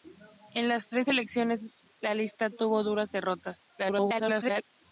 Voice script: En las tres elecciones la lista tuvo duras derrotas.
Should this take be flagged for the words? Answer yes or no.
yes